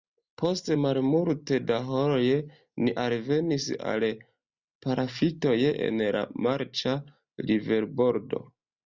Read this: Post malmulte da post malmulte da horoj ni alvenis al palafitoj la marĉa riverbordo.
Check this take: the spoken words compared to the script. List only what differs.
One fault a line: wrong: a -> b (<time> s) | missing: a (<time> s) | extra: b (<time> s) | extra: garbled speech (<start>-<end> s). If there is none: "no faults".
missing: post malmulte da (1.8 s)
extra: en (5.9 s)